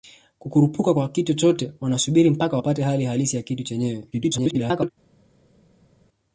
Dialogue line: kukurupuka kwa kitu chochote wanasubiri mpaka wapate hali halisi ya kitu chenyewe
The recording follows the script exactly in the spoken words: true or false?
false